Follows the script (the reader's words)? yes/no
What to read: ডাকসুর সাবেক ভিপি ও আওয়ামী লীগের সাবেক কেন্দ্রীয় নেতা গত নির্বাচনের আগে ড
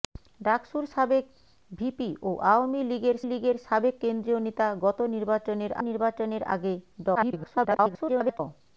no